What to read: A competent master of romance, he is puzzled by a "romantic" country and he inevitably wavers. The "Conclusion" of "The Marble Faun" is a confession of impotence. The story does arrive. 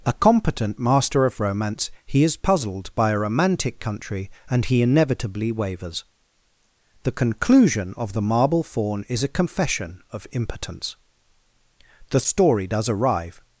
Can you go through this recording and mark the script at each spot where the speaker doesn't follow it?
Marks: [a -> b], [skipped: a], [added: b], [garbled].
A competent master of romance, he is puzzled by a "romantic" country and he inevitably wavers. The "Conclusion" of "The Marble Faun" is a confession of impotence. The story does arrive.